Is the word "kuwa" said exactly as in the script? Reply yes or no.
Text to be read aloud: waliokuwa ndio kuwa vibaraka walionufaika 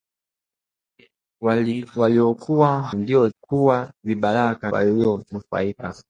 yes